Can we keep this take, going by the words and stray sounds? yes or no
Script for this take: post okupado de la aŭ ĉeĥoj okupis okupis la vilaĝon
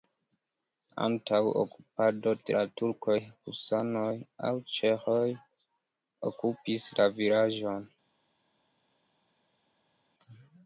no